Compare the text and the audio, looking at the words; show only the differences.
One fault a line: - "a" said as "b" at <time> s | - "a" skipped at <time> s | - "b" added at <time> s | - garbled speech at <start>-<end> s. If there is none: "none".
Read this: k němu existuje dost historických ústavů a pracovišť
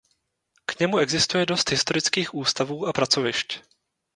none